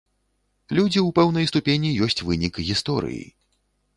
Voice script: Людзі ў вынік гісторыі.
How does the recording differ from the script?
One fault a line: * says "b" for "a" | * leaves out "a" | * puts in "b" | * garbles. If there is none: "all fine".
* puts in "пэўнай ступені ёсць"